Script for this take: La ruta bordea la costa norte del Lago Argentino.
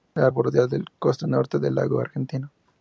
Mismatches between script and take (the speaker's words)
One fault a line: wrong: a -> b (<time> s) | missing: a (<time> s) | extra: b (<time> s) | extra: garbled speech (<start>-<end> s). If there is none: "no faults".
missing: ruta (0.3 s)